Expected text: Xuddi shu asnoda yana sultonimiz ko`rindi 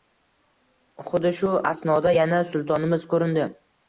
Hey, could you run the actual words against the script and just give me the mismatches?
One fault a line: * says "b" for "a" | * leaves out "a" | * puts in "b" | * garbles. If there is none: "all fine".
all fine